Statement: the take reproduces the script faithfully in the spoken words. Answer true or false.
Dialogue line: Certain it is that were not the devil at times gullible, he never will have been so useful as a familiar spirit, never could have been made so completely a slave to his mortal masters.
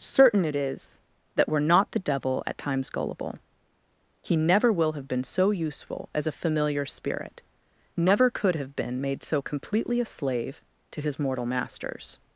true